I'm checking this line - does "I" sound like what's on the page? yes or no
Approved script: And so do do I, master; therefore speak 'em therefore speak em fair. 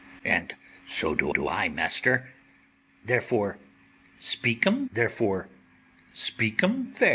yes